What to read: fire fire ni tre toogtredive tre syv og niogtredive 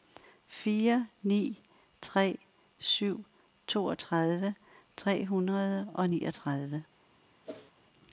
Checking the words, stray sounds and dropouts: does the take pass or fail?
fail